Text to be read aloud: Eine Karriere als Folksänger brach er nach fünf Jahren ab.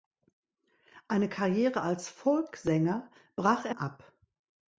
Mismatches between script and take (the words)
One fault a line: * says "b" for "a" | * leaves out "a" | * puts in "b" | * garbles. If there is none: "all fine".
* leaves out "nach fünf Jahren"